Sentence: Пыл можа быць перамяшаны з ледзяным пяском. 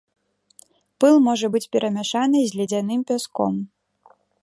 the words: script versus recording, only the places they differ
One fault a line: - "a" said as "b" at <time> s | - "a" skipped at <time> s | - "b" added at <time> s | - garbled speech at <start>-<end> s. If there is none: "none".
none